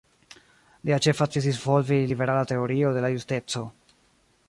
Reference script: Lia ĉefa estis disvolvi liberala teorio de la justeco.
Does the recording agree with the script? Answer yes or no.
yes